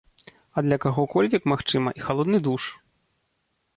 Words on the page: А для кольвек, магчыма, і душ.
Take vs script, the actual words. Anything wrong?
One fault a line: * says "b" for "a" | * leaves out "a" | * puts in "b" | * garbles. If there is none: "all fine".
* puts in "каго"
* puts in "халодны"